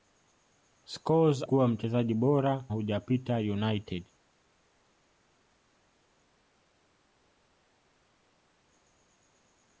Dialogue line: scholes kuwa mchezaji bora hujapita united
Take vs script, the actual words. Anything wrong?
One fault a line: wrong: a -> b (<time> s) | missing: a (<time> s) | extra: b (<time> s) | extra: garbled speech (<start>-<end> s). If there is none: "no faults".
no faults